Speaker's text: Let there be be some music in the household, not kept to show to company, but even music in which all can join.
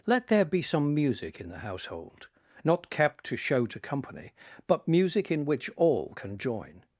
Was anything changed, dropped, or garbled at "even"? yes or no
yes